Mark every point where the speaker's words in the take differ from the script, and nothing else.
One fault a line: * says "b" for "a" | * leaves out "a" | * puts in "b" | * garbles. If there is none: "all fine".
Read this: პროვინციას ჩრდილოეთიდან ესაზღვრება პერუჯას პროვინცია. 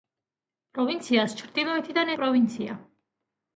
* leaves out "ესაზღვრება პერუჯას"